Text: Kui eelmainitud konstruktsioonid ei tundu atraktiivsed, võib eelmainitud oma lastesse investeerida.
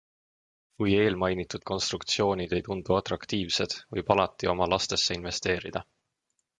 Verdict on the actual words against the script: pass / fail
fail